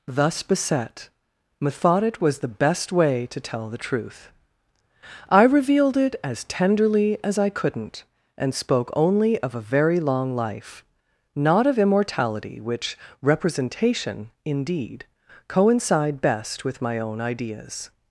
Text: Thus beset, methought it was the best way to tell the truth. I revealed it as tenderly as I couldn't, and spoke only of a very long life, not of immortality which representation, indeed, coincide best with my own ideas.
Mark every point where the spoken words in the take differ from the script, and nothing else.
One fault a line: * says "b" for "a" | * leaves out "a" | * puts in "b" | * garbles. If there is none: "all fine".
all fine